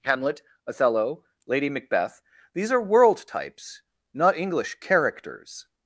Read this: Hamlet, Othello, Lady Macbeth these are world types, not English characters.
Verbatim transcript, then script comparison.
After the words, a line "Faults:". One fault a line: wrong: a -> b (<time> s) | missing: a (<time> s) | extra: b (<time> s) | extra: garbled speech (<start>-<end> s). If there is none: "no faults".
Hamlet, Othello, Lady Macbeth these are world types, not English characters.
Faults:
no faults